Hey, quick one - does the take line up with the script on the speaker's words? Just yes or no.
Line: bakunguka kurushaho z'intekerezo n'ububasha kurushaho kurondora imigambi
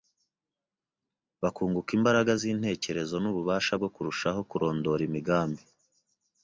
no